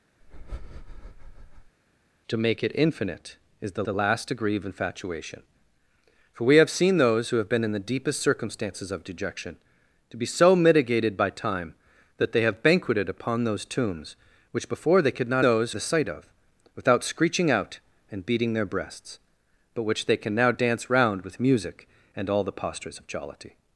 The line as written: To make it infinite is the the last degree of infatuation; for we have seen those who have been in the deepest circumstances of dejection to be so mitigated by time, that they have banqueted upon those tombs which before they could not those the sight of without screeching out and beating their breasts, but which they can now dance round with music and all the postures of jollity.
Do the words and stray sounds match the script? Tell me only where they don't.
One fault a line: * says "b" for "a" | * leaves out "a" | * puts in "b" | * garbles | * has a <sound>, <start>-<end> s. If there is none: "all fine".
* has a breath, 0.2-1.8 s